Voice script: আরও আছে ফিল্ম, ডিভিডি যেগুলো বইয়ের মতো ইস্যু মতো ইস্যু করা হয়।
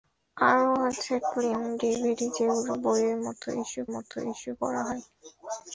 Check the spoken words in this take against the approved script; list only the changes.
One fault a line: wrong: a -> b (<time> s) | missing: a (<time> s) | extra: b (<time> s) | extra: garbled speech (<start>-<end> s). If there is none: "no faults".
no faults